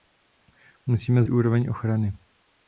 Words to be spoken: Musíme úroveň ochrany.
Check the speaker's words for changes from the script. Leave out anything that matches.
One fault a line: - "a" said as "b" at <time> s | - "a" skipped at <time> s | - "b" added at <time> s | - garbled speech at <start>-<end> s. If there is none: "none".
none